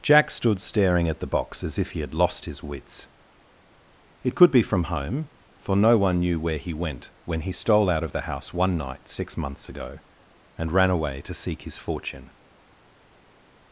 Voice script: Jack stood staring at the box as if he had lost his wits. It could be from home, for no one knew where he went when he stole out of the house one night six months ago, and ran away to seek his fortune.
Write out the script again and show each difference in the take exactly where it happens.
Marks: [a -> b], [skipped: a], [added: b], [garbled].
Jack stood staring at the box as if he had lost his wits. It could be from home, for no one knew where he went when he stole out of the house one night six months ago, and ran away to seek his fortune.